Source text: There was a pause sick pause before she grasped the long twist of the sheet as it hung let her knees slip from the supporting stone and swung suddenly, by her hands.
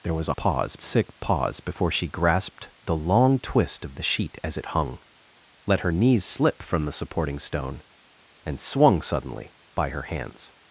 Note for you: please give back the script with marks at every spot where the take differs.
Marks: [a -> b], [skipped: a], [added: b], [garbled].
There was a pause sick pause before she grasped the long twist of the sheet as it hung let her knees slip from the supporting stone and swung suddenly, by her hands.